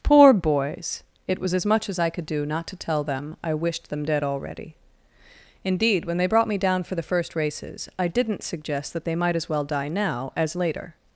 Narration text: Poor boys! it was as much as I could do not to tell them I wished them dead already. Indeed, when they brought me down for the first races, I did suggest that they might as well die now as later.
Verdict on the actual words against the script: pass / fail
fail